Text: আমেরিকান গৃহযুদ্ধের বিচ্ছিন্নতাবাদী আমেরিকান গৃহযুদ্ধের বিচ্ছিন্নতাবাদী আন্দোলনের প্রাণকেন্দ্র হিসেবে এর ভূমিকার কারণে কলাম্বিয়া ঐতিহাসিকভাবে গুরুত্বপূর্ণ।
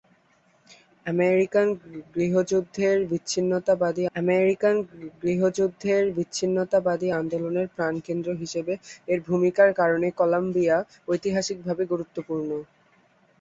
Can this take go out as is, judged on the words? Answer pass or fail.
pass